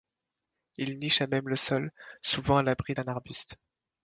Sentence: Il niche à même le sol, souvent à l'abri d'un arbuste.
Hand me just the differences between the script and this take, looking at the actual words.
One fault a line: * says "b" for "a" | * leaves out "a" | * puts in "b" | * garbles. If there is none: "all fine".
all fine